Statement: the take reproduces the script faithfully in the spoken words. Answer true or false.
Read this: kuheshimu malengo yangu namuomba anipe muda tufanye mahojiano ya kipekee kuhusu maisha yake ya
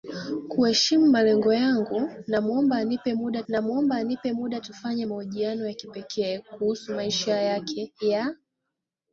false